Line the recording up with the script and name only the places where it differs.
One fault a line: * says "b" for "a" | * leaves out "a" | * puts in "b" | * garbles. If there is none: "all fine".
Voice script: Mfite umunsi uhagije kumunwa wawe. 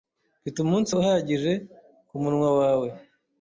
all fine